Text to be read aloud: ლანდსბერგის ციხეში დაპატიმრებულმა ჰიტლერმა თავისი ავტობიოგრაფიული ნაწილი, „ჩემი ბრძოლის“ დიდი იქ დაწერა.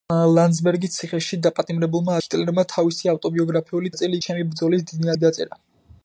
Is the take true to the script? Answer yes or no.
yes